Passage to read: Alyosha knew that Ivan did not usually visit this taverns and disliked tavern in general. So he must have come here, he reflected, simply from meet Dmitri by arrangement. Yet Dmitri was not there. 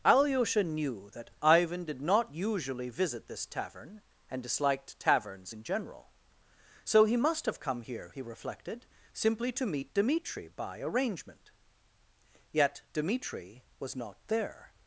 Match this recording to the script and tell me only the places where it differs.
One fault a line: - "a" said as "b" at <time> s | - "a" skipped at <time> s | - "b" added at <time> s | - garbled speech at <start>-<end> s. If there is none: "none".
- "taverns" said as "tavern" at 3.5 s
- "tavern" said as "taverns" at 5.0 s
- "from" said as "to" at 9.5 s